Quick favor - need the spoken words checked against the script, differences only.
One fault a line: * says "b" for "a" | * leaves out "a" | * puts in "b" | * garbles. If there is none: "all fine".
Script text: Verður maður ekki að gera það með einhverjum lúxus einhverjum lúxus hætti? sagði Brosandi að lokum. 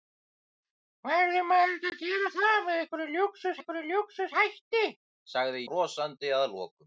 all fine